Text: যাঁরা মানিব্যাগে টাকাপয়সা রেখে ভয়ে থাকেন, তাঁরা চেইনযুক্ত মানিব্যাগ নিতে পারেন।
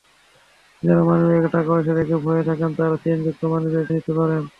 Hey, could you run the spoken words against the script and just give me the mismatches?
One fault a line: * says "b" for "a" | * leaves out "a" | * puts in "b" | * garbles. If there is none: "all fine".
all fine